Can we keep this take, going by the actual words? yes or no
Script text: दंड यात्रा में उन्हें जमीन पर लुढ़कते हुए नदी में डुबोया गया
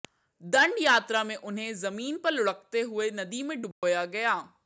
yes